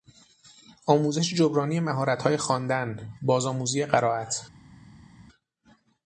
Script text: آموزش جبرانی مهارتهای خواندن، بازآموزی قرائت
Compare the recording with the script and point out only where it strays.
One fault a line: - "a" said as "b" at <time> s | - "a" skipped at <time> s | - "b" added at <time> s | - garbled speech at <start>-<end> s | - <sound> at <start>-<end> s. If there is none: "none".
none